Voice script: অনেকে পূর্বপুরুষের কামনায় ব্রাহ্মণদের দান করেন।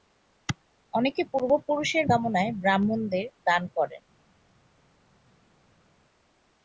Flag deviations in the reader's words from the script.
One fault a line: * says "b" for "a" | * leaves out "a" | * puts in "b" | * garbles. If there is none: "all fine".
all fine